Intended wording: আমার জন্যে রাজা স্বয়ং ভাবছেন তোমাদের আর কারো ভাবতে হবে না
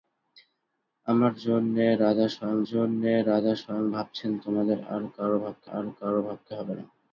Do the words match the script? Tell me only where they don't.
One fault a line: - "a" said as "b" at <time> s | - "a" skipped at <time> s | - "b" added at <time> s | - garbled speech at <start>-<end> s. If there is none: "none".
- "জন্যে রাজা স্বয়ং" added at 2.7 s
- "আর কারো ভাবতে" added at 5.7 s